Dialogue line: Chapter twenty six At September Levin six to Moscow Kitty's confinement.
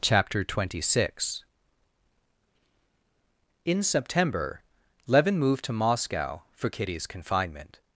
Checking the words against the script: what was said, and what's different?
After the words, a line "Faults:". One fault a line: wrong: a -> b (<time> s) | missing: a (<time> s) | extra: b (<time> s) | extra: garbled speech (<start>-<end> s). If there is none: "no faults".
Chapter twenty six In September Levin moved to Moscow for Kitty's confinement.
Faults:
wrong: At -> In (3.6 s)
wrong: six -> moved (5.4 s)
extra: for (6.5 s)